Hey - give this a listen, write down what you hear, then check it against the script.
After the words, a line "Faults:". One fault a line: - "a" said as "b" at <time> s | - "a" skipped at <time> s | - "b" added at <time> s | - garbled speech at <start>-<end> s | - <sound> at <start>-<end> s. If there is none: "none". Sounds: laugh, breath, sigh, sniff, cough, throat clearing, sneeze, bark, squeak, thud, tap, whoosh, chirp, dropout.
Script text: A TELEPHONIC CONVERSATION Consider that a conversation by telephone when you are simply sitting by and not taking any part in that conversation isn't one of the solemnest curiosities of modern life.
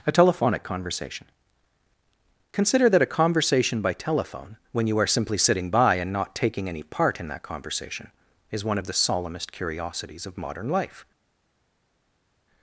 A TELEPHONIC CONVERSATION Consider that a conversation by telephone when you are simply sitting by and not taking any part in that conversation is one of the solemnest curiosities of modern life.
Faults:
- "isn't" said as "is" at 8.5 s